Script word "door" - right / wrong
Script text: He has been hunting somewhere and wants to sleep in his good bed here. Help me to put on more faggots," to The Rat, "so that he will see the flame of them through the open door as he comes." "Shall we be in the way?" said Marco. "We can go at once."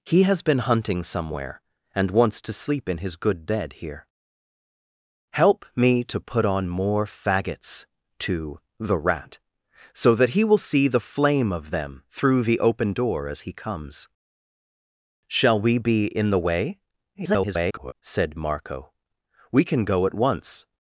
right